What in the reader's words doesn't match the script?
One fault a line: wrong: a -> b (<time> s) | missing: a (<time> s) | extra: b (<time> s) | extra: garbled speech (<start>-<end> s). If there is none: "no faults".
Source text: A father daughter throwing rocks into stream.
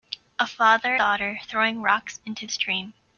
no faults